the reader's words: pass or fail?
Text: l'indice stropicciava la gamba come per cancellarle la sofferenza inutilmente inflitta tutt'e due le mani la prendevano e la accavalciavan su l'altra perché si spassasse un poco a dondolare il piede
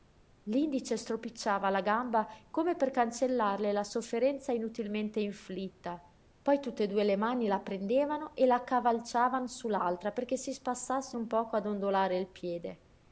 fail